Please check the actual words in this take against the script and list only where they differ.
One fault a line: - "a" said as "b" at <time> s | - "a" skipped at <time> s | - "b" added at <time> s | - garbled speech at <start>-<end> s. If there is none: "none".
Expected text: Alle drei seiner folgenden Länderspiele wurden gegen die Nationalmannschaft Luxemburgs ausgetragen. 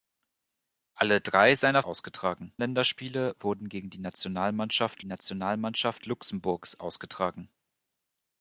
- "folgenden" said as "ausgetragen" at 1.8 s
- "Nationalmannschaft" added at 5.0 s